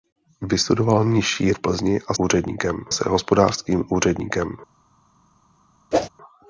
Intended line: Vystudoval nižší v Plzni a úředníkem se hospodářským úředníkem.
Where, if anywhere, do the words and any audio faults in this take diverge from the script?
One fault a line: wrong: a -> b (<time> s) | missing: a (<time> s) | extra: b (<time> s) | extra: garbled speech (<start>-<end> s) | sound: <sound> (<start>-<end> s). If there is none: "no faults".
sound: whoosh (5.9-6.1 s)